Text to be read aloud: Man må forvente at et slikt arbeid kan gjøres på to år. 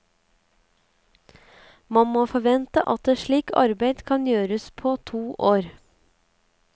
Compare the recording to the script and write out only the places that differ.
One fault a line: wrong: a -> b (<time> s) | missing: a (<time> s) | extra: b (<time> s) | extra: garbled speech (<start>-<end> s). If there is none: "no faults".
no faults